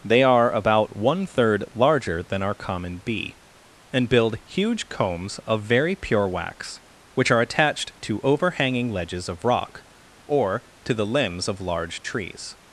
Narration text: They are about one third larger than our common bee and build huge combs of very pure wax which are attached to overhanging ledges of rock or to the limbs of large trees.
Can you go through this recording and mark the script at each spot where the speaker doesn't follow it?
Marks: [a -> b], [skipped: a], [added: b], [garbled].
They are about one third larger than our common bee and build huge combs of very pure wax which are attached to overhanging ledges of rock or to the limbs of large trees.